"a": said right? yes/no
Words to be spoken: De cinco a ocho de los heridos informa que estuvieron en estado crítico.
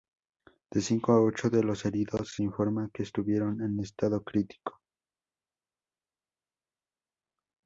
yes